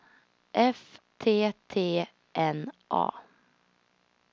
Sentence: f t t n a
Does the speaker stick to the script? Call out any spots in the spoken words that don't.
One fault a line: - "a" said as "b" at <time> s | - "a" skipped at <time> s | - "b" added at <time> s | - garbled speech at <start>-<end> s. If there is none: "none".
none